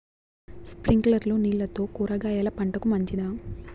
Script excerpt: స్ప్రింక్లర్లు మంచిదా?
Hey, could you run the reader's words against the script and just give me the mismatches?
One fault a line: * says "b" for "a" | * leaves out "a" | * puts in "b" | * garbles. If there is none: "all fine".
* puts in "నీళ్లతో కూరగాయల పంటకు"